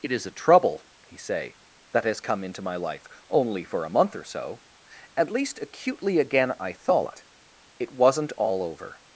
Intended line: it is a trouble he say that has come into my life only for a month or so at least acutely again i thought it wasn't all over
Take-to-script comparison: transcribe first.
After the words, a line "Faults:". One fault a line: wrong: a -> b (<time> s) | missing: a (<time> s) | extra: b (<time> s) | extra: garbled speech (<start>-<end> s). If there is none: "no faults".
it is a trouble he say that has come into my life only for a month or so at least acutely again i thought it wasn't all over
Faults:
no faults